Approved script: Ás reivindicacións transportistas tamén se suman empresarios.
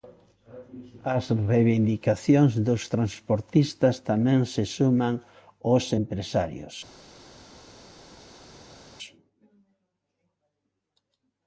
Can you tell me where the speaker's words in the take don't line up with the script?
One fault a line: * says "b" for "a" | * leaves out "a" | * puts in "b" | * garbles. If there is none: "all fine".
* puts in "dos"
* puts in "os"